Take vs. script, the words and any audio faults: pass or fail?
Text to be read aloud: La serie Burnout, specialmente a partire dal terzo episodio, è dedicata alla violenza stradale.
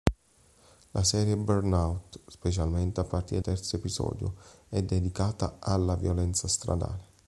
fail